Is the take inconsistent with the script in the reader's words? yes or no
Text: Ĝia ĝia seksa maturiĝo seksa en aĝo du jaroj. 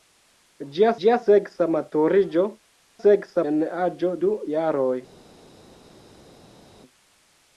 no